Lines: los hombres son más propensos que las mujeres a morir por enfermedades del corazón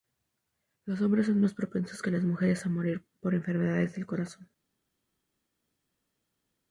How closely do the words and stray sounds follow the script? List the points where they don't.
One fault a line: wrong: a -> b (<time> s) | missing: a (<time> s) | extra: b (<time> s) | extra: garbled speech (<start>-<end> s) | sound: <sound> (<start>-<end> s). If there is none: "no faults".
no faults